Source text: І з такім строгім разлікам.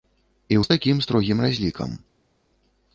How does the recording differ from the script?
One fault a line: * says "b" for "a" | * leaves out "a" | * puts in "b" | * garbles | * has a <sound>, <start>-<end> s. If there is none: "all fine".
all fine